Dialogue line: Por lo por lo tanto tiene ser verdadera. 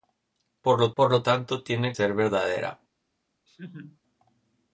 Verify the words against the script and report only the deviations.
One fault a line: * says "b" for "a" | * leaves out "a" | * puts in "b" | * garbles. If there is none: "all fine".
all fine